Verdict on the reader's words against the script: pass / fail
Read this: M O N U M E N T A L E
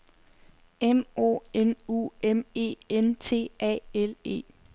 pass